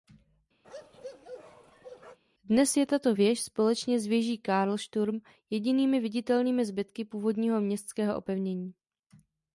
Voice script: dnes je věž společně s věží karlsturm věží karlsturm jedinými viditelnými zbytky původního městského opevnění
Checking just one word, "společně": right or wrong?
right